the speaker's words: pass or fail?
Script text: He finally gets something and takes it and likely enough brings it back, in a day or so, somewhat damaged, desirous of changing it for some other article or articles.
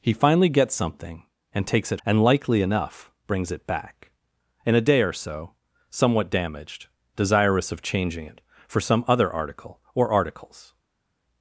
pass